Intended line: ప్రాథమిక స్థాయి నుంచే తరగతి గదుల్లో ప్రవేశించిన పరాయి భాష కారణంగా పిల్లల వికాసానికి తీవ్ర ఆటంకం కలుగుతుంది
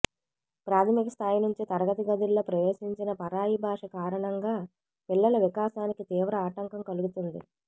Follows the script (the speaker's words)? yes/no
yes